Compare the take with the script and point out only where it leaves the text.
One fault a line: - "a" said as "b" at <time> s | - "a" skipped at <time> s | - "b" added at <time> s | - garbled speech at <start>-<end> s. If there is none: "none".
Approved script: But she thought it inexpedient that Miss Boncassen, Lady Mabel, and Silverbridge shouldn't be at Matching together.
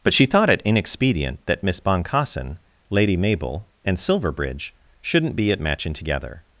none